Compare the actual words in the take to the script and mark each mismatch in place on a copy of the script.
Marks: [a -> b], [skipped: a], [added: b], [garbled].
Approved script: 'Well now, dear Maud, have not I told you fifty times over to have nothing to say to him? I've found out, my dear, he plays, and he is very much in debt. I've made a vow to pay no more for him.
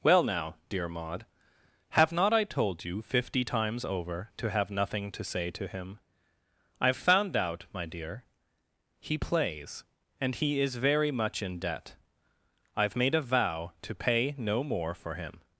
'Well now, dear Maud, have not I told you fifty times over to have nothing to say to him? I've found out, my dear, he plays, and he is very much in debt. I've made a vow to pay no more for him.